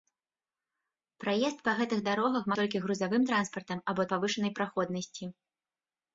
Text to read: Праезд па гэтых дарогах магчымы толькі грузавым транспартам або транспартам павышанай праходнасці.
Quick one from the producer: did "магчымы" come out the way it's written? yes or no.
no